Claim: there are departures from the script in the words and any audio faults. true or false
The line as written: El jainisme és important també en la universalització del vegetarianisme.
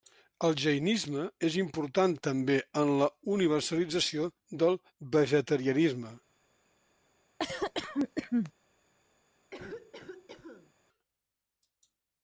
true